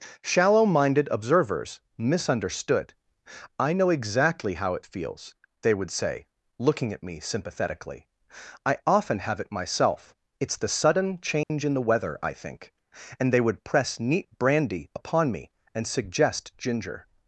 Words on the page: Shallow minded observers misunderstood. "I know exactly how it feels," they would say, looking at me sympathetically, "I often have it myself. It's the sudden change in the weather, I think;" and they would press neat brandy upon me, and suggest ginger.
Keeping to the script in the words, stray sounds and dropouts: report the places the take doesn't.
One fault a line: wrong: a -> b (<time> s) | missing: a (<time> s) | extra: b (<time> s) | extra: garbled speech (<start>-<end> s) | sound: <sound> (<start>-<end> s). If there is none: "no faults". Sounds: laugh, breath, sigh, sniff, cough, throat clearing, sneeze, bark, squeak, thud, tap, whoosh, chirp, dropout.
sound: dropout (11.4-11.5 s)